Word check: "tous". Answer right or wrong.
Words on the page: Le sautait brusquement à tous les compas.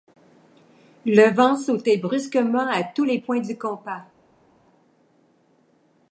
right